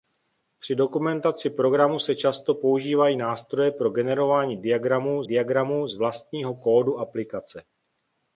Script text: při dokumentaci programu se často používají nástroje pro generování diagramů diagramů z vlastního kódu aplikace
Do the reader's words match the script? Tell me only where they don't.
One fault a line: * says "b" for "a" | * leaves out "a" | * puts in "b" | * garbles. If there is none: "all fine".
all fine